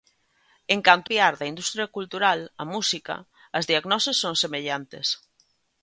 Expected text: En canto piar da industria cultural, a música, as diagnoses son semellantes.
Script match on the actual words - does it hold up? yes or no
yes